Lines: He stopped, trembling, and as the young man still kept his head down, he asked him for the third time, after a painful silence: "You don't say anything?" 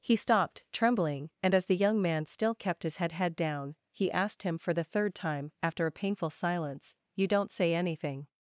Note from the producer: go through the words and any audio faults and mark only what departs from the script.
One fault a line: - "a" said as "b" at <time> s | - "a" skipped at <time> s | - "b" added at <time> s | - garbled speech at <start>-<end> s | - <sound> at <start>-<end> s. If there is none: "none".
- "head" added at 3.1 s